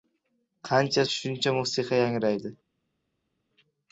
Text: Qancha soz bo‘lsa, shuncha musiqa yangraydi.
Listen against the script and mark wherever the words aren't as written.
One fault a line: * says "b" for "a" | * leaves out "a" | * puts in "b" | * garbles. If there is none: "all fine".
* leaves out "soz bo‘lsa"